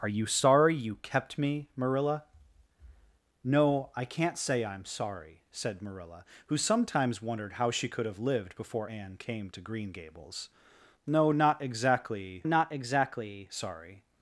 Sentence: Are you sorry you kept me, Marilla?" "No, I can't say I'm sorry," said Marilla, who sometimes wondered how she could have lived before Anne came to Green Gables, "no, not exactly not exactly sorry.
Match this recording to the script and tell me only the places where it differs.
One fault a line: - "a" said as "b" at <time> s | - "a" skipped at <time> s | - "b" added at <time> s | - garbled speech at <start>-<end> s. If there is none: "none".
none